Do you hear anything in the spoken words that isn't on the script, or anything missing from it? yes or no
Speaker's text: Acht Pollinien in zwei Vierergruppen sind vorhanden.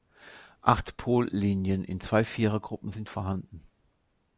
no